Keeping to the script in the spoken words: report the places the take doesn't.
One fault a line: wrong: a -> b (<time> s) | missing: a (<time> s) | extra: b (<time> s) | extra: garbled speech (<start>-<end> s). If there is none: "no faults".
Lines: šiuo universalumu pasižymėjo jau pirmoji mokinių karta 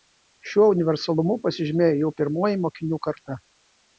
no faults